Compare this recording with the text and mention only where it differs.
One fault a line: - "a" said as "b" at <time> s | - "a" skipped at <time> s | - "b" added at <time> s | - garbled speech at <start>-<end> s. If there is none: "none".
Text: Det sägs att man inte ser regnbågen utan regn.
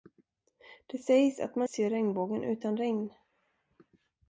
- "inte" skipped at 1.7 s